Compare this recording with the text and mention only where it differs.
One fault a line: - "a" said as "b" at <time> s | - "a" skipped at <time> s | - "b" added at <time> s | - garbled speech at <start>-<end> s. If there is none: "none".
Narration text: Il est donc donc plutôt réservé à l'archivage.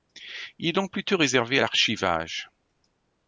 - "donc" skipped at 0.9 s